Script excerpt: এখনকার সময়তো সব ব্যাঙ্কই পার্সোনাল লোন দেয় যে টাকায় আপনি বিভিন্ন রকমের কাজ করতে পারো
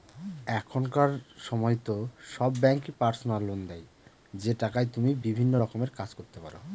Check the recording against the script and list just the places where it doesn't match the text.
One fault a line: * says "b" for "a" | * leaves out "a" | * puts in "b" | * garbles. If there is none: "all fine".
* says "তুমি" for "আপনি"